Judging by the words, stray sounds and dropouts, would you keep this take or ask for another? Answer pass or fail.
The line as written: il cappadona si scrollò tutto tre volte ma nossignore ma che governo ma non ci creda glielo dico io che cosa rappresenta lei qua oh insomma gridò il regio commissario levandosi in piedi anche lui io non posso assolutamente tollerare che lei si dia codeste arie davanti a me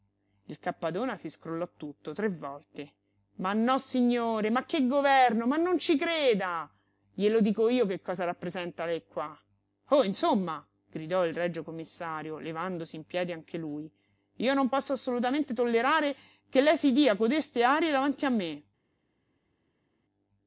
pass